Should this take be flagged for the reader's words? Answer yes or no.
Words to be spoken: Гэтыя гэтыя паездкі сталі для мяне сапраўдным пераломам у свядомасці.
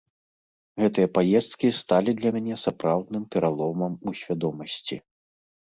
yes